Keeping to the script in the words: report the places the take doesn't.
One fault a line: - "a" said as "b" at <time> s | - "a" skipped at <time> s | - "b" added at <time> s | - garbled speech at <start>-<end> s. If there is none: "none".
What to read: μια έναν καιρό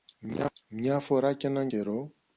- "φορά κι" added at 1.0 s